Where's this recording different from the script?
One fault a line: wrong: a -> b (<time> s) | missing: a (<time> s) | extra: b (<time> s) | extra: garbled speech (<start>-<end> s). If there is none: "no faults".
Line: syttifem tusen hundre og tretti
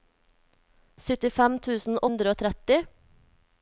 no faults